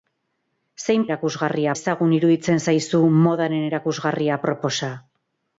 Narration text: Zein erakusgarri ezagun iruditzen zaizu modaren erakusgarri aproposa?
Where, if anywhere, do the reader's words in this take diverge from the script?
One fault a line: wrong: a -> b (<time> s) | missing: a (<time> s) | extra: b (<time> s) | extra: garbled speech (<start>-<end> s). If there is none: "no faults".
no faults